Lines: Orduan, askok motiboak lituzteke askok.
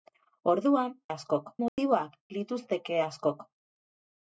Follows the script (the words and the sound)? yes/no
no